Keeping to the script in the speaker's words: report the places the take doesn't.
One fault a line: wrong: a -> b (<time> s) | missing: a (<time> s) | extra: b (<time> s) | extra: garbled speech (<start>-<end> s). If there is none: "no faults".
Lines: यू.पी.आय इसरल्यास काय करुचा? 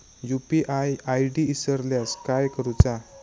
extra: आय.डी (1.1 s)